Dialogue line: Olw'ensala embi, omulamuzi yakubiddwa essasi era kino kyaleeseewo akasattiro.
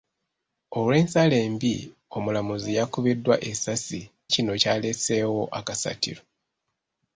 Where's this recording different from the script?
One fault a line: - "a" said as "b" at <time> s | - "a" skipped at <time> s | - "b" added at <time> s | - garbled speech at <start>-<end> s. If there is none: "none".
- "era" skipped at 4.0 s